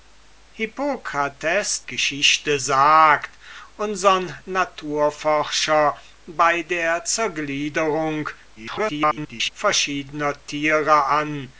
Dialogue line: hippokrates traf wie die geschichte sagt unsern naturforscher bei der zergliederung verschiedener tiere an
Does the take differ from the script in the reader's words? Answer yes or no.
yes